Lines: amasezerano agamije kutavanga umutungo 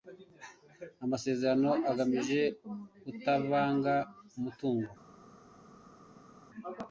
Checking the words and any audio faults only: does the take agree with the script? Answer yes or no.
yes